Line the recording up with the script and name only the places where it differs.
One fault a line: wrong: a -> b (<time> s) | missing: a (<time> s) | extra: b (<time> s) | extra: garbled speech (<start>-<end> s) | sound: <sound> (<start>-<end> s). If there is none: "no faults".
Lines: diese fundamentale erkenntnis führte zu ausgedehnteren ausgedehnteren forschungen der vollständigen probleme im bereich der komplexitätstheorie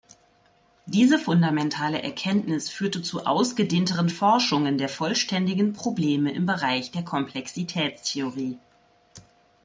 missing: ausgedehnteren (4.1 s)